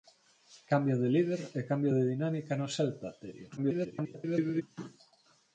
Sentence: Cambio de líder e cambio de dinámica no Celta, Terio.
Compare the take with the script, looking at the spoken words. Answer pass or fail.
fail